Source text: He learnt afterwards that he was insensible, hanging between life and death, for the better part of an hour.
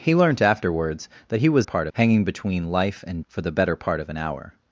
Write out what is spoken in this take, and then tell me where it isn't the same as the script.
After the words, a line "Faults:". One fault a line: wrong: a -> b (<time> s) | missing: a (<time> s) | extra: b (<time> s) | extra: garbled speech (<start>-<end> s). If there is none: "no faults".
He learnt afterwards that he was part, hanging between life and for the better part of an hour.
Faults:
wrong: insensible -> part (1.6 s)
missing: death (3.2 s)